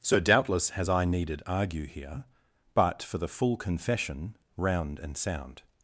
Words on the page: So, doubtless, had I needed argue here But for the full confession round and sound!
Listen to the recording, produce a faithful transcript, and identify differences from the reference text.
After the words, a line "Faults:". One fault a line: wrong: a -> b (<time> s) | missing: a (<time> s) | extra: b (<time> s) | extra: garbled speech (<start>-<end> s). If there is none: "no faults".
So, doubtless, has I needed argue here But for the full confession round and sound!
Faults:
wrong: had -> has (0.7 s)